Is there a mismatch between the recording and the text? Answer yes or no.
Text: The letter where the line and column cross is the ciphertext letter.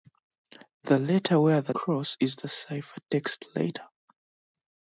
yes